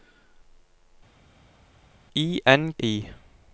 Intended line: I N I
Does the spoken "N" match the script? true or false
true